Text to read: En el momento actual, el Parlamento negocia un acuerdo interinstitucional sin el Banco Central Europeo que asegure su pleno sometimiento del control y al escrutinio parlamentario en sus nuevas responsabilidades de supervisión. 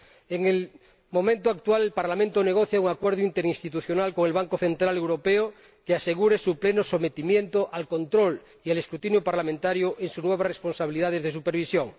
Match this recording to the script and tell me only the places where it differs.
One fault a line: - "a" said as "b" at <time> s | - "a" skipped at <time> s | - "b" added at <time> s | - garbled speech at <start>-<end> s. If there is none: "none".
- "sin" said as "con" at 4.1 s
- "del" said as "al" at 7.7 s